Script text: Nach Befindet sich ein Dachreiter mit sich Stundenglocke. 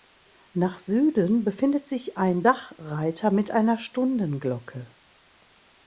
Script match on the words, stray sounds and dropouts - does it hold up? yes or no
no